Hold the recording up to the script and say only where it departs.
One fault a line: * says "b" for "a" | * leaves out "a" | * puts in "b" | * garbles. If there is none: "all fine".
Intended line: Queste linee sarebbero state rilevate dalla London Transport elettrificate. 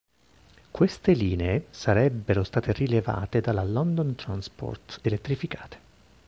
all fine